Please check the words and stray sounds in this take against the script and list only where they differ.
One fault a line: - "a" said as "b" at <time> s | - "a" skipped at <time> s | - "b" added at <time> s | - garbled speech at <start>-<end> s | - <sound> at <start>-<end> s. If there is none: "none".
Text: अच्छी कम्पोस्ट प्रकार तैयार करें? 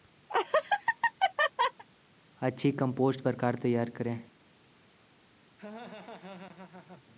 - laugh at 0.3-1.8 s
- laugh at 5.6-7.0 s